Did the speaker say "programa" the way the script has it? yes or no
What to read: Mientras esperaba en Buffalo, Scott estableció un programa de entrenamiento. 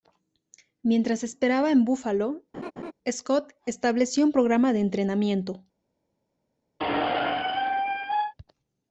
yes